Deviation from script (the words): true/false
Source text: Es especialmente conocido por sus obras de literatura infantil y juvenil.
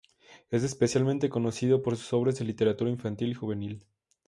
false